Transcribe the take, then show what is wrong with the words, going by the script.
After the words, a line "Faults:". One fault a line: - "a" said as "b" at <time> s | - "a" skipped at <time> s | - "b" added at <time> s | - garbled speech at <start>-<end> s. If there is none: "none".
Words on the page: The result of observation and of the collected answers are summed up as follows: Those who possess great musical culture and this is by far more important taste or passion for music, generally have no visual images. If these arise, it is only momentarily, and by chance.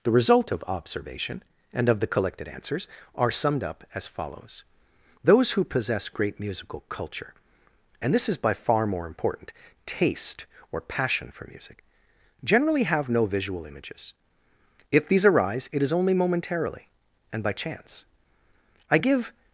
The result of observation and of the collected answers are summed up as follows: Those who possess great musical culture and this is by far more important taste or passion for music, generally have no visual images. If these arise, it is only momentarily, and by chance. I give
Faults:
- "I give" added at 18.9 s